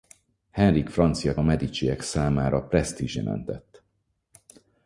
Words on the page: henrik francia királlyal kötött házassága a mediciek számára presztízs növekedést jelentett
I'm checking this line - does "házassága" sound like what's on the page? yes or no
no